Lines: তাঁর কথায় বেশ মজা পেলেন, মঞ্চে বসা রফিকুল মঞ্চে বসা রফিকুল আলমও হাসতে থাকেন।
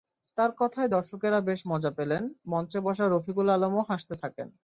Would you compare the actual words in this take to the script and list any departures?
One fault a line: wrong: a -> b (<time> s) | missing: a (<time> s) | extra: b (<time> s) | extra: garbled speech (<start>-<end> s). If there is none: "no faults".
extra: দর্শকেরা (0.9 s)
missing: মঞ্চে বসা রফিকুল (3.5 s)